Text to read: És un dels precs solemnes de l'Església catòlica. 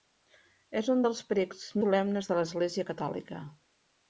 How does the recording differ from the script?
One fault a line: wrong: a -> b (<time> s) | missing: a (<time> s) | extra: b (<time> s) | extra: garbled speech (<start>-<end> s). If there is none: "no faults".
no faults